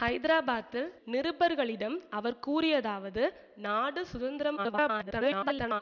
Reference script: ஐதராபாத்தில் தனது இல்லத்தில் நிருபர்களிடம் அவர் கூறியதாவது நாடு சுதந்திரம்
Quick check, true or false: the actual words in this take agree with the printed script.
false